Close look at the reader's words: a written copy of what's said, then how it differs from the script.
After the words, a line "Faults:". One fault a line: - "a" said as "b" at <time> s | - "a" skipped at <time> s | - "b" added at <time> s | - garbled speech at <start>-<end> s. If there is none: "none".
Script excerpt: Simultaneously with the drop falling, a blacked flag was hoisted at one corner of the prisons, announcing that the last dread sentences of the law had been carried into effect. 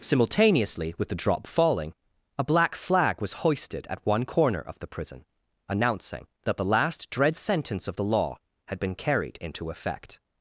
Simultaneously with the drop falling, a black flag was hoisted at one corner of the prison, announcing that the last dread sentence of the law had been carried into effect.
Faults:
- "blacked" said as "black" at 2.4 s
- "prisons" said as "prison" at 4.9 s
- "sentences" said as "sentence" at 7.3 s